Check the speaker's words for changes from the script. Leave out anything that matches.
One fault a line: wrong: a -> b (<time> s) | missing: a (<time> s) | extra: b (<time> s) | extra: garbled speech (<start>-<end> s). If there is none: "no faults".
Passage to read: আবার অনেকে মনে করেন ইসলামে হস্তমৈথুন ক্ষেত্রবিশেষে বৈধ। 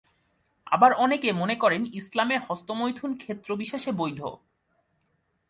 no faults